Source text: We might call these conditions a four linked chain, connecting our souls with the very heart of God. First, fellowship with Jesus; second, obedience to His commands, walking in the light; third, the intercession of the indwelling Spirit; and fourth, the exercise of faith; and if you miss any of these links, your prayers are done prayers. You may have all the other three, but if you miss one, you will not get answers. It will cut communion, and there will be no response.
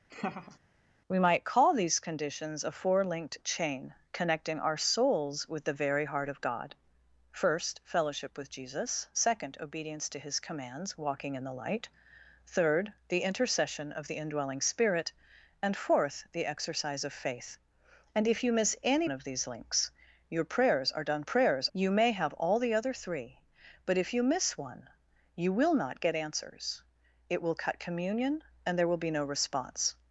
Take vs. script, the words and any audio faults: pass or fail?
fail